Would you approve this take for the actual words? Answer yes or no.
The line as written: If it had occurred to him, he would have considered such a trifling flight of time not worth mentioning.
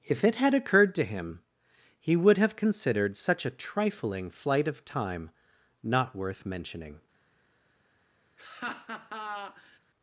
yes